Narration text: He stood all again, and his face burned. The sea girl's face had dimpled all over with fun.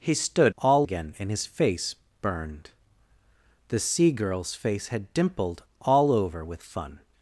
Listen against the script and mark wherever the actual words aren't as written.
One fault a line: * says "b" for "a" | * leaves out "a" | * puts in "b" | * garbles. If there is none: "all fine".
all fine